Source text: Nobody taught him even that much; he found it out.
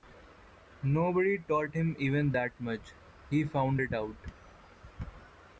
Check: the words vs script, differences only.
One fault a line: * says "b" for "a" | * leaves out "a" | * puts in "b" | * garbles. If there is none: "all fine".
all fine